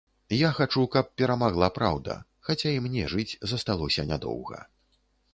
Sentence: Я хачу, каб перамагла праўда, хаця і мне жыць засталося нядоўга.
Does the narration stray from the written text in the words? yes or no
no